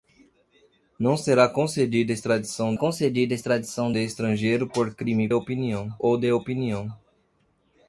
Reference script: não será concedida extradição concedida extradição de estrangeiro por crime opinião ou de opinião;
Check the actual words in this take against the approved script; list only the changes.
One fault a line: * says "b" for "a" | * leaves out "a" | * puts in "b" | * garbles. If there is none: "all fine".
all fine